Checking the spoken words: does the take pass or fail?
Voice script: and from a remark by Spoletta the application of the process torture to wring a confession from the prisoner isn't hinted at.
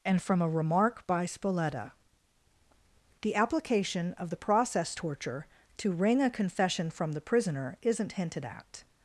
pass